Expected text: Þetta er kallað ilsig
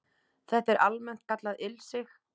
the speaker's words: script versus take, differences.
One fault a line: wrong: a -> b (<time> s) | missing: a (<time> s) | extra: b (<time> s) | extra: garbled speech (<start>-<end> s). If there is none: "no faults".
extra: almennt (0.9 s)